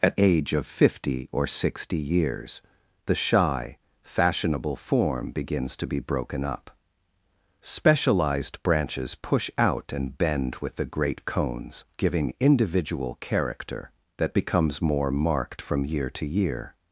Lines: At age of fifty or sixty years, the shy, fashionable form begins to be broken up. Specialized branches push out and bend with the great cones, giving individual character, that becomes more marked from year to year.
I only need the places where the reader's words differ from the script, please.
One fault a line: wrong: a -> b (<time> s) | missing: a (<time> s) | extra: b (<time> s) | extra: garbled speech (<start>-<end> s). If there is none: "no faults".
no faults